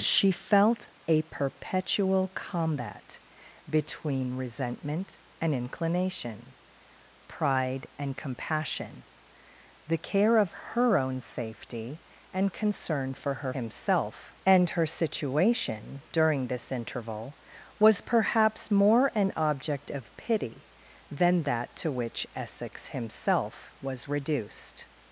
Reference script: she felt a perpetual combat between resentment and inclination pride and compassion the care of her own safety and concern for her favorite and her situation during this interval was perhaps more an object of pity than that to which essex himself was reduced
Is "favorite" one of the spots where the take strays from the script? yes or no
yes